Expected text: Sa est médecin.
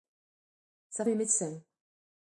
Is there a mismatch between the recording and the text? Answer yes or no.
no